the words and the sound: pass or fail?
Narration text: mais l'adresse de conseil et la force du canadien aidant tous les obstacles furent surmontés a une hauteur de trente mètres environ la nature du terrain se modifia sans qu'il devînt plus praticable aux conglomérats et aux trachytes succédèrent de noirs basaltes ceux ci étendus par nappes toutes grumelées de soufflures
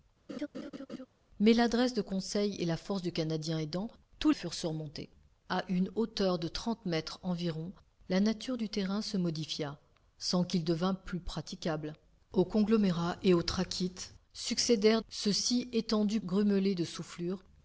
fail